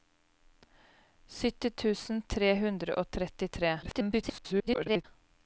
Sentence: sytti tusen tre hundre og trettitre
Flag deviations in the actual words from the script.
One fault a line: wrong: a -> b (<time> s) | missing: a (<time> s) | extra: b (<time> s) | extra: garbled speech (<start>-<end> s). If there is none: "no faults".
extra: garbled speech (3.8-5.1 s)